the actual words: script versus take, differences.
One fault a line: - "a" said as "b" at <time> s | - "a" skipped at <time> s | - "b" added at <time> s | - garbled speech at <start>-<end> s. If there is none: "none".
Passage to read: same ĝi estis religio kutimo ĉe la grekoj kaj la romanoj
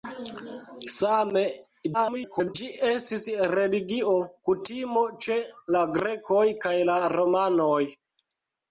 - garbled speech at 1.9-2.6 s